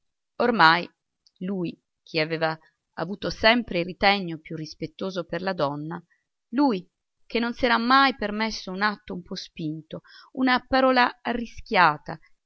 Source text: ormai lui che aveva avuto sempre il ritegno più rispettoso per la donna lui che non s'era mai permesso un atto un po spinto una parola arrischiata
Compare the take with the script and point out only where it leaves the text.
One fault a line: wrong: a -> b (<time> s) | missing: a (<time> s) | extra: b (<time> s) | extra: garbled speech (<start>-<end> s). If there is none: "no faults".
no faults